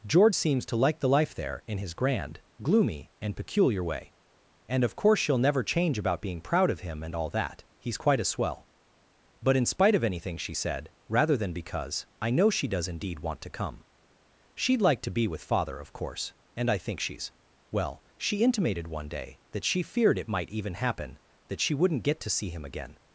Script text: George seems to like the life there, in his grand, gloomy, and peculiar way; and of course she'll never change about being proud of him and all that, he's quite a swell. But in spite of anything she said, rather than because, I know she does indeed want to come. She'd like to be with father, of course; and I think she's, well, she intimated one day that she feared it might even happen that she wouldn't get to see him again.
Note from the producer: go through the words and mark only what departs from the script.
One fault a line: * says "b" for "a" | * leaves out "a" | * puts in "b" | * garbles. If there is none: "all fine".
all fine